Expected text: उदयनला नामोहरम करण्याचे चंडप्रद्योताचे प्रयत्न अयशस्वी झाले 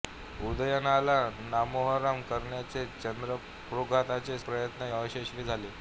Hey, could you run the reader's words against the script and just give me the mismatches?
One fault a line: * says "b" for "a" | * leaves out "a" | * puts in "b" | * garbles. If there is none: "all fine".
all fine